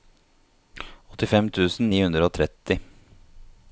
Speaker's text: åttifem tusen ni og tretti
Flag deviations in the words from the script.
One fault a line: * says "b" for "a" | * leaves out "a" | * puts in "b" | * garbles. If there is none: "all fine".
* puts in "hundre"